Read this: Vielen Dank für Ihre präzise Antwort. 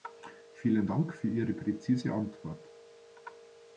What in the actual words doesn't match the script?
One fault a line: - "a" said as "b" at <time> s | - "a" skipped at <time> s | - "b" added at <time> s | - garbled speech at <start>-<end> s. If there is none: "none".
none